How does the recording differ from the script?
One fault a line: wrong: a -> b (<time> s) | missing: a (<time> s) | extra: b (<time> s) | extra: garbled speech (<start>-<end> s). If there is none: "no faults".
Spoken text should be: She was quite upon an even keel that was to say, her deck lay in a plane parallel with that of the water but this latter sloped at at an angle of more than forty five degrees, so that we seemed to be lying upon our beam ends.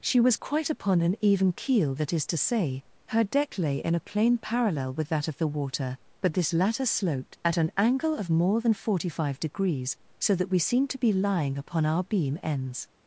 wrong: was -> is (2.1 s)
missing: at (7.6 s)